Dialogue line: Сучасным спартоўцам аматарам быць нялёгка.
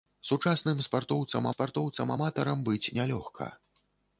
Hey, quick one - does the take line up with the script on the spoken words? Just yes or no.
no